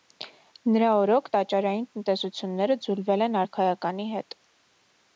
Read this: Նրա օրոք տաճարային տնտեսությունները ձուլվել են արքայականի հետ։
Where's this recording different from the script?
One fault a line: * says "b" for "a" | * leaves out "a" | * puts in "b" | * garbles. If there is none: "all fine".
all fine